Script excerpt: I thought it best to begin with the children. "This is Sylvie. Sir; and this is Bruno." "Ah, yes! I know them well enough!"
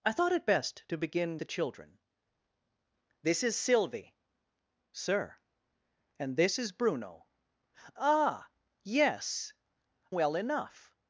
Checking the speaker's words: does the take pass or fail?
fail